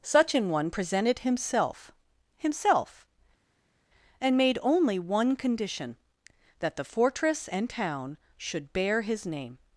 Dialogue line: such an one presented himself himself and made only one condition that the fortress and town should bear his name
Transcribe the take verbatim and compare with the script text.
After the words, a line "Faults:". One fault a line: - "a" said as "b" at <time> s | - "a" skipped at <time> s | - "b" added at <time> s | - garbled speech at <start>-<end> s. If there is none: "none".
such an one presented himself himself and made only one condition that the fortress and town should bear his name
Faults:
none